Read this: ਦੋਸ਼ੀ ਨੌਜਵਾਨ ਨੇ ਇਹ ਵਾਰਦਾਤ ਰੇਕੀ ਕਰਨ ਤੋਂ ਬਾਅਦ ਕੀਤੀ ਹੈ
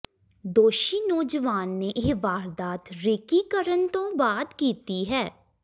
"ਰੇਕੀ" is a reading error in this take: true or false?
false